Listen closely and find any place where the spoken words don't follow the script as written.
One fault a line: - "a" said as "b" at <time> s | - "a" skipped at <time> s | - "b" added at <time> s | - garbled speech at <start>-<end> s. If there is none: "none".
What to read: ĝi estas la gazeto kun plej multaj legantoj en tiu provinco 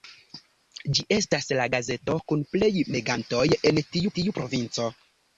- "multaj" skipped at 2.7 s
- "tiu" added at 4.2 s